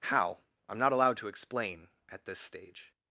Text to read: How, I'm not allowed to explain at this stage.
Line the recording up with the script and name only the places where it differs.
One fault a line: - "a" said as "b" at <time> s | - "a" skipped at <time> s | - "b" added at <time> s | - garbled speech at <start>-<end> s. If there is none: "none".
none